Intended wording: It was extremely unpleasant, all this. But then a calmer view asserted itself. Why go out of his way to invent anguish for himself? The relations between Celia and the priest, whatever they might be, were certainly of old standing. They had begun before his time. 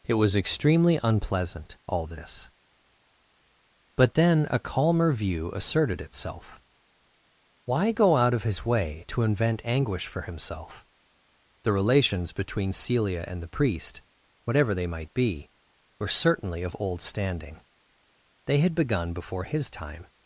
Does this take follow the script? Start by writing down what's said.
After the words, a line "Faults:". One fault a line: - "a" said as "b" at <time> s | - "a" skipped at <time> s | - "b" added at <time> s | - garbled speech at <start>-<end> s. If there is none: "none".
It was extremely unpleasant, all this. But then a calmer view asserted itself. Why go out of his way to invent anguish for himself? The relations between Celia and the priest, whatever they might be, were certainly of old standing. They had begun before his time.
Faults:
none